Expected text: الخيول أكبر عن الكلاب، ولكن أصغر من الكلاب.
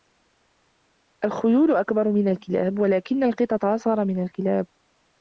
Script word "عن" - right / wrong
wrong